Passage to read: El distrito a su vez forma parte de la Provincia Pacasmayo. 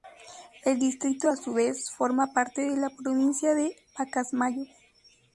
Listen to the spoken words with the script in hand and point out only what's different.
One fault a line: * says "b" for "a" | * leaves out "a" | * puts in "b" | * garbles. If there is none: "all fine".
* puts in "de"